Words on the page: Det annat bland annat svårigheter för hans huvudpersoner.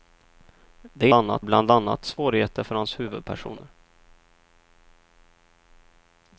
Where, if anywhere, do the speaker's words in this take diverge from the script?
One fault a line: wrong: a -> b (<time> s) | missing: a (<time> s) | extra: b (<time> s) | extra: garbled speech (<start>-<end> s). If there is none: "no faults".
no faults